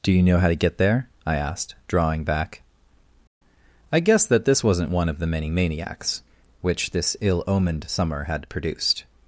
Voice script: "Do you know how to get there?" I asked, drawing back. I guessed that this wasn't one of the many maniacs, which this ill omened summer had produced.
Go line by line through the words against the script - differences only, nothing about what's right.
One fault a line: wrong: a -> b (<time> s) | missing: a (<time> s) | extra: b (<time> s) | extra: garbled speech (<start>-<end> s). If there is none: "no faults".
no faults